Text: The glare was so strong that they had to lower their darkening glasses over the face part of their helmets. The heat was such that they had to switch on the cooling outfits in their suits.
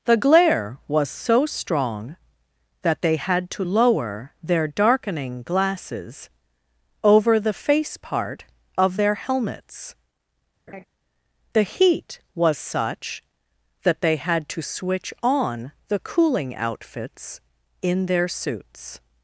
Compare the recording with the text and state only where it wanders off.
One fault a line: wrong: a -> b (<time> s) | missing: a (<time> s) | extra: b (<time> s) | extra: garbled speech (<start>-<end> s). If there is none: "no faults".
no faults